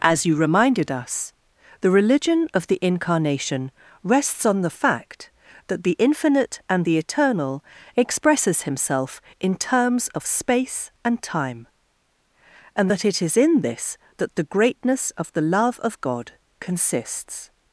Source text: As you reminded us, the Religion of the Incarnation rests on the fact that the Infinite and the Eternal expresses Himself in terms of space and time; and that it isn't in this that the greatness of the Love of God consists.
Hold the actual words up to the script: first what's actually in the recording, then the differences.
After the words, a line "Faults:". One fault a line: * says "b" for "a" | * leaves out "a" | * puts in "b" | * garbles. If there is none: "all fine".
As you reminded us, the Religion of the Incarnation rests on the fact that the Infinite and the Eternal expresses Himself in terms of space and time; and that it is in this that the greatness of the Love of God consists.
Faults:
* says "is" for "isn't"